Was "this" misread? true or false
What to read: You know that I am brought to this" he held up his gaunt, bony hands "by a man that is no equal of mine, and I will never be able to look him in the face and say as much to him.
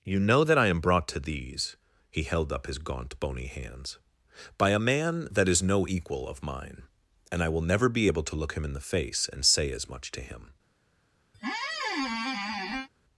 true